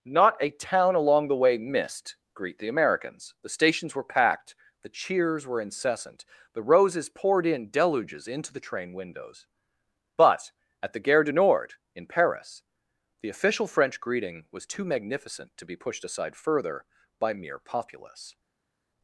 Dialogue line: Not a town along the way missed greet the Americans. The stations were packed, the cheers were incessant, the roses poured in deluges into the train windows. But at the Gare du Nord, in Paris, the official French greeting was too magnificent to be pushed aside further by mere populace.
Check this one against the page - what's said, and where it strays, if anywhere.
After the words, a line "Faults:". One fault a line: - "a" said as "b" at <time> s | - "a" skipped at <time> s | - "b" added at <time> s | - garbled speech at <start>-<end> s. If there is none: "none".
Not a town along the way missed greet the Americans. The stations were packed, the cheers were incessant, the roses poured in deluges into the train windows. But at the Gare du Nord, in Paris, the official French greeting was too magnificent to be pushed aside further by mere populace.
Faults:
none